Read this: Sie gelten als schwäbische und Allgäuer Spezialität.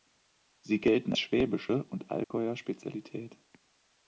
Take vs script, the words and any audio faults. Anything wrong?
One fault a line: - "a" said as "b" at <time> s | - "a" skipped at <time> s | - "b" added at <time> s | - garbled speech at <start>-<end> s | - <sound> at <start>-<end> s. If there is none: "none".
- "als" skipped at 1.1 s
- dropout at 2.2-2.3 s